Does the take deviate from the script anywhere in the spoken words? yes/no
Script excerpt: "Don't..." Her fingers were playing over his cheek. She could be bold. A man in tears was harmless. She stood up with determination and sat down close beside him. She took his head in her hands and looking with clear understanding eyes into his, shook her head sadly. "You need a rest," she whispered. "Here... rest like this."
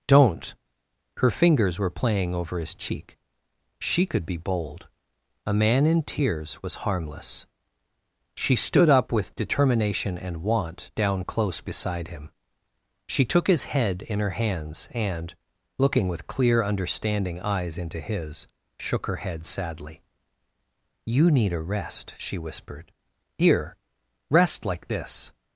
yes